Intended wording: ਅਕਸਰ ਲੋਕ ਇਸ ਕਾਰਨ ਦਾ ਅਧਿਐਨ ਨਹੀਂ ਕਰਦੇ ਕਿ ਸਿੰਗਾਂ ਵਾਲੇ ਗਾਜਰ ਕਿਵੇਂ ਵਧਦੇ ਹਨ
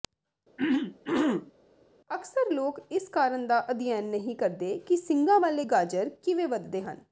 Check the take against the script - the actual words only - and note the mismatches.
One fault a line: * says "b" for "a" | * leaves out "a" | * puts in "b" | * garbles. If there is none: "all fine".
all fine